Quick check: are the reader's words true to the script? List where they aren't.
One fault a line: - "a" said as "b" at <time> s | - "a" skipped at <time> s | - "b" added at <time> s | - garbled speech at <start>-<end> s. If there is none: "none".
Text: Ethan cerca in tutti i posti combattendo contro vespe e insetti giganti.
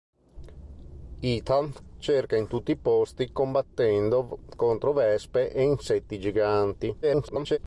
- garbled speech at 7.0-7.6 s